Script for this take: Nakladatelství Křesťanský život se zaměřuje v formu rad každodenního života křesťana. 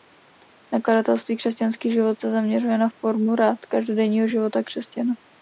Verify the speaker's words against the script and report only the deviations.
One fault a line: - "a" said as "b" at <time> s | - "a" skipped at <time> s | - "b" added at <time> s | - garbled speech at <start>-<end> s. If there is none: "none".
- "v" said as "na" at 2.8 s